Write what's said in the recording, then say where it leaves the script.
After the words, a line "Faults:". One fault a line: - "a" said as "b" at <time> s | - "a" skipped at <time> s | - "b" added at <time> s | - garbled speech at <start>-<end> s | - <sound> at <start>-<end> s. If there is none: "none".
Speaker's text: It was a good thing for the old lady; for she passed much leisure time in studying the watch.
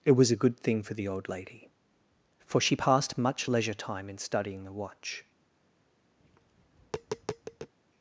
It was a good thing for the old lady; for she passed much leisure time in studying the watch.
Faults:
- tap at 6.2-7.7 s